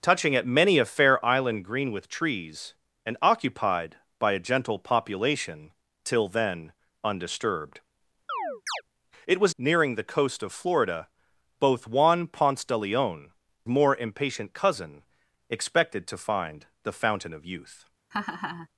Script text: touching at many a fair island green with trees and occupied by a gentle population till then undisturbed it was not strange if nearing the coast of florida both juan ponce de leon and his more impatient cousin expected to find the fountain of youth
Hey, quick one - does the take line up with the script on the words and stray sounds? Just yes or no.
no